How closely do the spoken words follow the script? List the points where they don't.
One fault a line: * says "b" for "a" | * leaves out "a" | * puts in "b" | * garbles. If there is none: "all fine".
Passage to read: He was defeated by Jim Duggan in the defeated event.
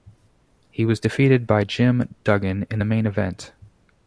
* says "main" for "defeated"